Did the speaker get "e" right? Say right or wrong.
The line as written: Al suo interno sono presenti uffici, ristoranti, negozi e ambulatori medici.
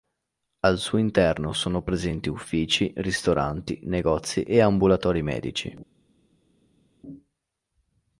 right